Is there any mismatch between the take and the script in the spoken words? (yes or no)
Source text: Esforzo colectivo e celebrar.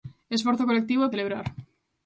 no